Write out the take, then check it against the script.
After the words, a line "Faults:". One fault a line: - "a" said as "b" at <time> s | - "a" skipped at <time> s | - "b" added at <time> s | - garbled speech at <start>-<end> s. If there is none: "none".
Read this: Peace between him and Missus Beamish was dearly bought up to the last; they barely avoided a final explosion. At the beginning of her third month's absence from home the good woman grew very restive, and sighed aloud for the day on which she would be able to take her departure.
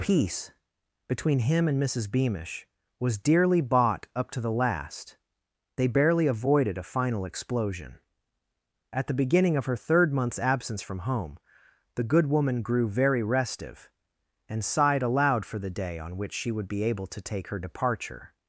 Peace between him and Missus Beamish was dearly bought up to the last; they barely avoided a final explosion. At the beginning of her third month's absence from home the good woman grew very restive, and sighed aloud for the day on which she would be able to take her departure.
Faults:
none